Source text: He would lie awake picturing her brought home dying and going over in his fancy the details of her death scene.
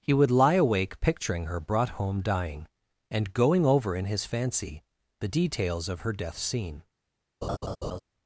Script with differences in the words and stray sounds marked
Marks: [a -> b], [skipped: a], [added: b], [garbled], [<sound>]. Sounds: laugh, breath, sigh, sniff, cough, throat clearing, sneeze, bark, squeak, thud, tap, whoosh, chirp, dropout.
He would lie awake picturing her brought home dying and going over in his fancy the details of her death scene. [laugh]